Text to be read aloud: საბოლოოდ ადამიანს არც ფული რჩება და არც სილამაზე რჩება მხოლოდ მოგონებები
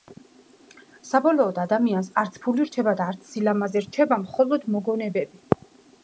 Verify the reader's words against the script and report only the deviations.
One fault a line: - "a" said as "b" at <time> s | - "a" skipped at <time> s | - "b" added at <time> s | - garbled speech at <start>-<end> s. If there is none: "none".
none